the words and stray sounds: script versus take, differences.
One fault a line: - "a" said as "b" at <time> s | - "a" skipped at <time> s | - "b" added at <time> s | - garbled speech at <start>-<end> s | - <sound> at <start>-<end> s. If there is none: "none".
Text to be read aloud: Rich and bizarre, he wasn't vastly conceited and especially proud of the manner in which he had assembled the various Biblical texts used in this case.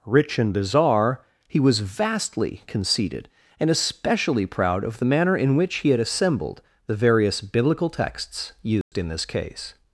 - "wasn't" said as "was" at 1.6 s
- dropout at 8.8-8.9 s